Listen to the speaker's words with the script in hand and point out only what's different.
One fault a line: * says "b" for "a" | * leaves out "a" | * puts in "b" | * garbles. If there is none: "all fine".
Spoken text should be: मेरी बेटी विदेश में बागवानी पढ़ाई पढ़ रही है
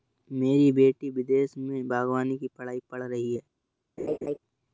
* puts in "की"